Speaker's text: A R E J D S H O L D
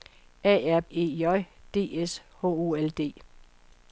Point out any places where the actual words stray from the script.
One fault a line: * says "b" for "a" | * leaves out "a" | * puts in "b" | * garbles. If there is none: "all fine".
all fine